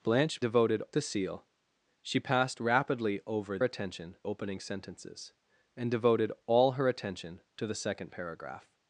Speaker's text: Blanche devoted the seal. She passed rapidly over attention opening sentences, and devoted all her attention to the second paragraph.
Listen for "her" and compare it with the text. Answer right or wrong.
right